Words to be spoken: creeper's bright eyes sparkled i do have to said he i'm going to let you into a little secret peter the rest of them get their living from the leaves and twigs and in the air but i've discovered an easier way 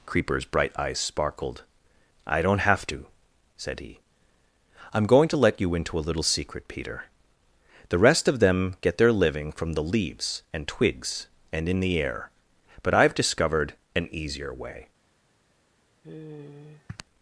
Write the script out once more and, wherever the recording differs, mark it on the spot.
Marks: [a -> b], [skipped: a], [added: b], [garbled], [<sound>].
creeper's bright eyes sparkled i [do -> don't] have to said he i'm going to let you into a little secret peter the rest of them get their living from the leaves and twigs and in the air but i've discovered an easier way [sigh]